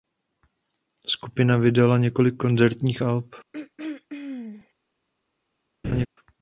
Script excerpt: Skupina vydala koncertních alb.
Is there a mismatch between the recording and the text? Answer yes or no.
yes